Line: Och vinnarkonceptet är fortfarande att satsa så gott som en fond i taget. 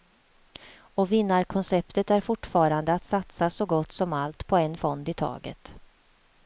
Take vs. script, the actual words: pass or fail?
fail